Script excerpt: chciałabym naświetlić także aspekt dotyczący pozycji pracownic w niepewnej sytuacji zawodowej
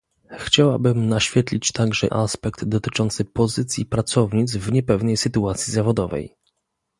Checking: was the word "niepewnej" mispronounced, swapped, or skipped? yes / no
no